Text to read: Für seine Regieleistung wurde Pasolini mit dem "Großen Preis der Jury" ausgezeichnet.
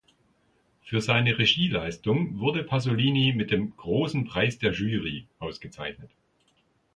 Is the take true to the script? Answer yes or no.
yes